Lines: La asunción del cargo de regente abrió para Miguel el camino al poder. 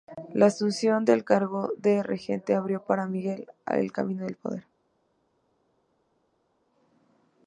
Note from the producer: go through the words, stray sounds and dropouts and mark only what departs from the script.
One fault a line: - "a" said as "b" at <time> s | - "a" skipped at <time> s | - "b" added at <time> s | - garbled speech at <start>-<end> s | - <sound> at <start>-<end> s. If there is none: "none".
none